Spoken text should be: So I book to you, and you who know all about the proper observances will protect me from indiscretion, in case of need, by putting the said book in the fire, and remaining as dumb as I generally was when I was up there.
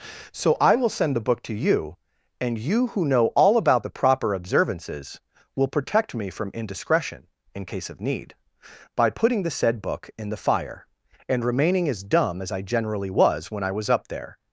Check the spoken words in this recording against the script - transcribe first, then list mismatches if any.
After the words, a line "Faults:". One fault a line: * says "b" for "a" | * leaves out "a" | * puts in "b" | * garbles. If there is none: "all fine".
So I will send the book to you, and you who know all about the proper observances will protect me from indiscretion, in case of need, by putting the said book in the fire, and remaining as dumb as I generally was when I was up there.
Faults:
* puts in "will send the"